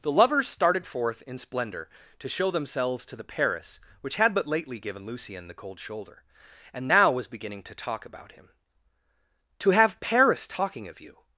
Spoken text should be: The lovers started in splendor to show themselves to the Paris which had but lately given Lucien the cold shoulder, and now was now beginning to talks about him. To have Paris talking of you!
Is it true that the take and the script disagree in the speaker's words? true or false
true